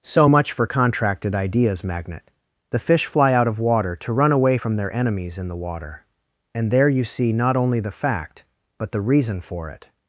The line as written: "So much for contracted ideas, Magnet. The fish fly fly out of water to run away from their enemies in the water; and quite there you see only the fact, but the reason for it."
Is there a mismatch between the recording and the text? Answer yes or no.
yes